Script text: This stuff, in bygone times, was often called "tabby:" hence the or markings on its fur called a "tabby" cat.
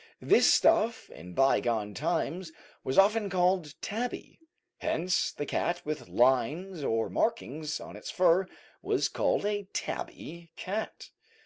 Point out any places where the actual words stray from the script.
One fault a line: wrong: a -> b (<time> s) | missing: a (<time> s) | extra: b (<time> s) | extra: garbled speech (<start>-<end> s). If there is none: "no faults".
extra: cat with lines (5.4 s)
extra: was (8.8 s)